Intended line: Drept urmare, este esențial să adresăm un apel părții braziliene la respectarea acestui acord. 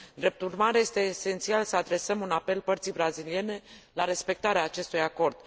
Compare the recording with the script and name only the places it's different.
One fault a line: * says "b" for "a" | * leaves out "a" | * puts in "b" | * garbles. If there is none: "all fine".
all fine